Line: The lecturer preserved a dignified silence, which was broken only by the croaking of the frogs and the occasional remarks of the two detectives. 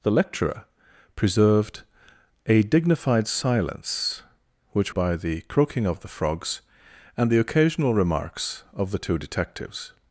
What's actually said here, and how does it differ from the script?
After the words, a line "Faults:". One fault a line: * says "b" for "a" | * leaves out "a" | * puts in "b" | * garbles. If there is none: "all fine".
The lecturer preserved a dignified silence, which by the croaking of the frogs and the occasional remarks of the two detectives.
Faults:
* leaves out "was broken only"